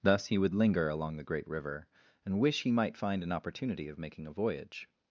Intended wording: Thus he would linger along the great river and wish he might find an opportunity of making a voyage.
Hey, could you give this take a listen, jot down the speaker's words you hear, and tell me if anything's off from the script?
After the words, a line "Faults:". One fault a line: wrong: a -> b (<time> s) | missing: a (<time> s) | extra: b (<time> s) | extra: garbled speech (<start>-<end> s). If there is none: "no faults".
Thus he would linger along the great river and wish he might find an opportunity of making a voyage.
Faults:
no faults